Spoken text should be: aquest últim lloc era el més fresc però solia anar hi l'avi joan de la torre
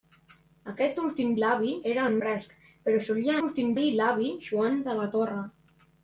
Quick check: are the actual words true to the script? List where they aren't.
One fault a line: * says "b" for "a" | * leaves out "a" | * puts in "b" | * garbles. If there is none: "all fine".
* says "l'avi" for "lloc"
* leaves out "més"
* says "últim" for "anar"